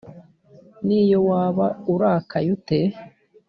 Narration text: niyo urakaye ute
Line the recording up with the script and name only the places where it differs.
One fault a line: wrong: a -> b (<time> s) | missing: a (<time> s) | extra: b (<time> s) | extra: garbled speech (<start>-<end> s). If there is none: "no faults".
extra: waba (1.3 s)